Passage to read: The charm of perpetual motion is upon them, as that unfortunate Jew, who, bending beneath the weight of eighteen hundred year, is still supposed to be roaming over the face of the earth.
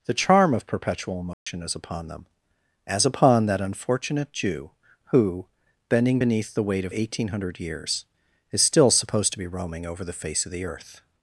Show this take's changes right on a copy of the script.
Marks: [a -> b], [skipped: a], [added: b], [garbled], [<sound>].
The charm of perpetual motion [dropout] is upon them, as [added: upon] that unfortunate Jew, who, bending beneath the weight of eighteen hundred [year, -> years] is still supposed to be roaming over the face of the earth.